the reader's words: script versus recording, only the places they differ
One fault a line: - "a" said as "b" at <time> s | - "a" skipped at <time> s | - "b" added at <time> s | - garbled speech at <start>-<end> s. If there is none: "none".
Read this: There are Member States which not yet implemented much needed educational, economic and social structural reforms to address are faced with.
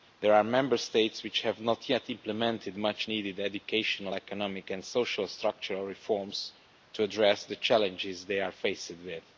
- "have" added at 1.4 s
- "the challenges they" added at 7.5 s